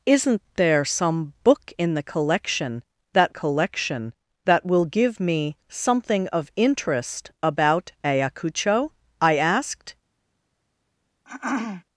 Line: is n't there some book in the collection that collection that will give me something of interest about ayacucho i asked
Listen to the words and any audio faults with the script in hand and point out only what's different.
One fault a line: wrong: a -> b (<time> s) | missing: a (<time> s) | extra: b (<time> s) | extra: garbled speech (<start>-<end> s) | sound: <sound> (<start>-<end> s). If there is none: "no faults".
sound: throat clearing (11.2-11.8 s)